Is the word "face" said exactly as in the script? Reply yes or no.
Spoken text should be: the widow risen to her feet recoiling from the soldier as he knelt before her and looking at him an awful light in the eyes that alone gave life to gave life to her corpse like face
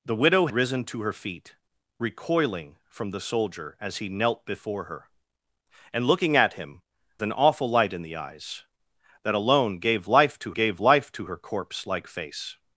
yes